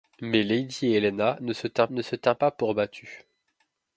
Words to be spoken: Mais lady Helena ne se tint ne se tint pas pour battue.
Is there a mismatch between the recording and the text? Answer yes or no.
no